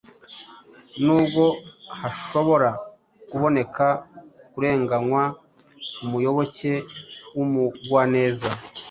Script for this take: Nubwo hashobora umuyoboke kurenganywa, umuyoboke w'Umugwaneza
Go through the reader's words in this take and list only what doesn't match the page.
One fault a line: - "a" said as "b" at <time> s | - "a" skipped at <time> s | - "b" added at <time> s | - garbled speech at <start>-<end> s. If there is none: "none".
- "umuyoboke" said as "kuboneka" at 3.3 s